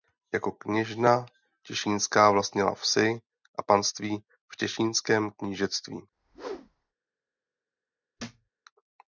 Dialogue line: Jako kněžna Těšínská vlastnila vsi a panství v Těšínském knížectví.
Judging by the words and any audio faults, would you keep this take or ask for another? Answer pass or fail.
fail